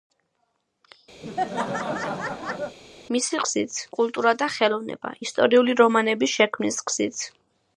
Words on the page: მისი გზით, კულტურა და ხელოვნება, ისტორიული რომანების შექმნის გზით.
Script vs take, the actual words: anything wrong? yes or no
no